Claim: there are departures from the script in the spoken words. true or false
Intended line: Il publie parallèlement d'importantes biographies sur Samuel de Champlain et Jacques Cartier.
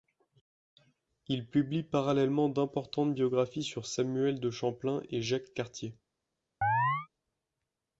false